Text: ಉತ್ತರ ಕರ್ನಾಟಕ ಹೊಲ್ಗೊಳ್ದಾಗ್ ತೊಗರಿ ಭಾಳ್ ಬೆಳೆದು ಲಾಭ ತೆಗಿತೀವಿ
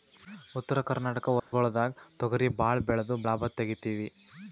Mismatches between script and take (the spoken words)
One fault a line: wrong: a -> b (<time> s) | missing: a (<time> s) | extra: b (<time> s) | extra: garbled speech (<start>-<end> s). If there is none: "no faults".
no faults